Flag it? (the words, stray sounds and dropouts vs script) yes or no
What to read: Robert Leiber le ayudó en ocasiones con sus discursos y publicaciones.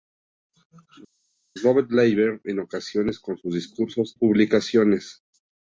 yes